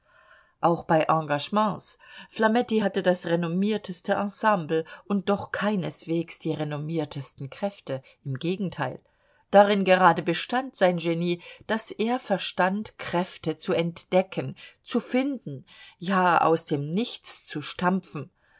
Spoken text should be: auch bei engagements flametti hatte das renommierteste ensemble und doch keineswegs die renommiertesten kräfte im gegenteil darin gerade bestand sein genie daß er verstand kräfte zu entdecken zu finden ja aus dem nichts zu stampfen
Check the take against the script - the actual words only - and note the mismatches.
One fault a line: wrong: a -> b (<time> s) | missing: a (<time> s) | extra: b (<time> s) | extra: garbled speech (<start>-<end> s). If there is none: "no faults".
no faults